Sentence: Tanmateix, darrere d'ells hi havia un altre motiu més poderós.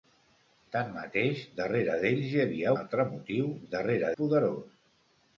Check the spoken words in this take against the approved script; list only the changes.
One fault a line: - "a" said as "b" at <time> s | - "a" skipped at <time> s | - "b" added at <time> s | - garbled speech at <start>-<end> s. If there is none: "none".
- "un" skipped at 2.7 s
- "més" said as "darrere" at 3.7 s